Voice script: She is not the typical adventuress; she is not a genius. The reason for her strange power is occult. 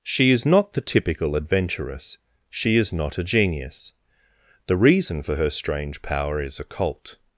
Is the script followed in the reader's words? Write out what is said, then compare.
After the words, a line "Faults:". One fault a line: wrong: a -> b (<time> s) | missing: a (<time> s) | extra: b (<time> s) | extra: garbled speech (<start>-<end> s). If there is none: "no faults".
She is not the typical adventuress; she is not a genius. The reason for her strange power is occult.
Faults:
no faults